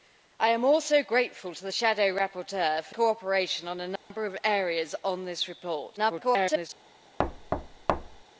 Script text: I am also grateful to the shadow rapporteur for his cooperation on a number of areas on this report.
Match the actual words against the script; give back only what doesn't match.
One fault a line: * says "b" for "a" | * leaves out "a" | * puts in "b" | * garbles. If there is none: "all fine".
* leaves out "his"
* garbles